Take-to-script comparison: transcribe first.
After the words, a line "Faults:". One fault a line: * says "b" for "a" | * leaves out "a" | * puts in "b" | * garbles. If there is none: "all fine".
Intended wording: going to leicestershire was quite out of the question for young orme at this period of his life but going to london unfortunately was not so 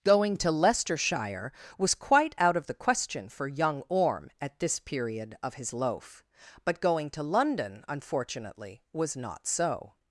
going to leicestershire was quite out of the question for young orme at this period of his loaf but going to london unfortunately was not so
Faults:
* says "loaf" for "life"